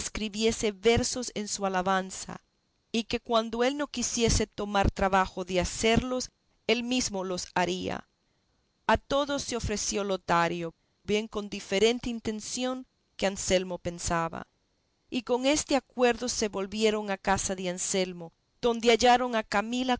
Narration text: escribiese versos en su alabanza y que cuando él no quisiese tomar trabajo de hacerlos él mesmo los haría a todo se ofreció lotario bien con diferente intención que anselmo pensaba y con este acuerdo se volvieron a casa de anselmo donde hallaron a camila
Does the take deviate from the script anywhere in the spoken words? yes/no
no